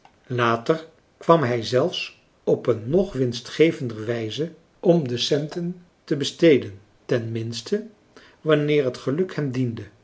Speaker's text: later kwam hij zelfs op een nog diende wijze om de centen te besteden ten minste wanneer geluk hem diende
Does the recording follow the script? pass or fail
fail